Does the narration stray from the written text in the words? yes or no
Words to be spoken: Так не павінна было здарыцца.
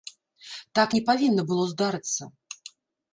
no